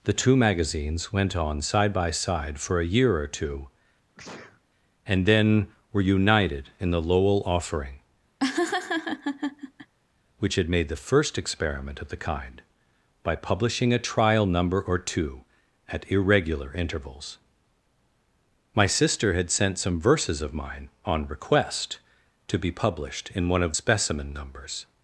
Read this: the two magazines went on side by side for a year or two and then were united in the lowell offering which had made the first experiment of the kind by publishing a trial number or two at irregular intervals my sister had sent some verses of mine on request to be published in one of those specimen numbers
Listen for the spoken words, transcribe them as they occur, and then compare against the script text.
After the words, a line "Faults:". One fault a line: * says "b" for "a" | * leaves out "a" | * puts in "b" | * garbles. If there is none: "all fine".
the two magazines went on side by side for a year or two and then were united in the lowell offering which had made the first experiment of the kind by publishing a trial number or two at irregular intervals my sister had sent some verses of mine on request to be published in one of specimen numbers
Faults:
* leaves out "those"